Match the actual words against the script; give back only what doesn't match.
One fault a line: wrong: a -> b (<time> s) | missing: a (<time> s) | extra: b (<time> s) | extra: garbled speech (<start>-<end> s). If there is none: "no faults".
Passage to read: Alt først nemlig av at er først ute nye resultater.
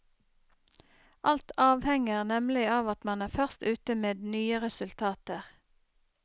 wrong: først -> avhenger (1.6 s)
extra: man (3.1 s)
extra: med (4.0 s)